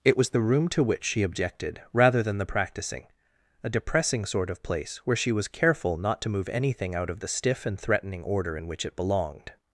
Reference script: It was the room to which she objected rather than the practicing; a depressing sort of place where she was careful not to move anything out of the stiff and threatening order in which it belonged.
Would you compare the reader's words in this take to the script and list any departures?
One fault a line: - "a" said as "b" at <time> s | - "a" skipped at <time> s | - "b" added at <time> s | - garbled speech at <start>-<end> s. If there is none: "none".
none